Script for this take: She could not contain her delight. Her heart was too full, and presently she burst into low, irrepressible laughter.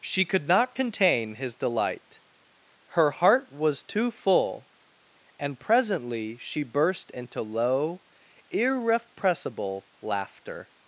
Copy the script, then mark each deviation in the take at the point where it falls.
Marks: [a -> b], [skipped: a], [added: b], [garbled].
She could not contain [her -> his] delight. Her heart was too full, and presently she burst into low, irrepressible laughter.